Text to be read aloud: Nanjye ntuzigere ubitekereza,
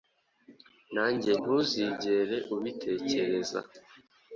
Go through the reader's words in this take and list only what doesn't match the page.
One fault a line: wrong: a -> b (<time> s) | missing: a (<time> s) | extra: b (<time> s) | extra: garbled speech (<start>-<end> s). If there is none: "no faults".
no faults